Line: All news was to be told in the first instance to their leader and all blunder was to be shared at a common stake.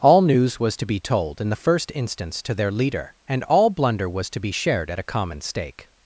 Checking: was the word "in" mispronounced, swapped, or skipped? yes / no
no